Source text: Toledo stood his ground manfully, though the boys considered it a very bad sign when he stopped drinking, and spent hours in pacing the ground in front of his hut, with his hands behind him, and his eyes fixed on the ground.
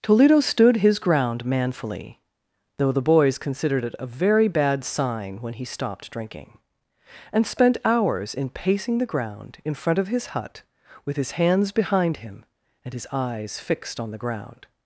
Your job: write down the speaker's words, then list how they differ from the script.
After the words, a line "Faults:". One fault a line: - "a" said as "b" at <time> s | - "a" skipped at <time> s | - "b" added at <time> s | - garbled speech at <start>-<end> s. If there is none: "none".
Toledo stood his ground manfully, though the boys considered it a very bad sign when he stopped drinking, and spent hours in pacing the ground in front of his hut, with his hands behind him, and his eyes fixed on the ground.
Faults:
none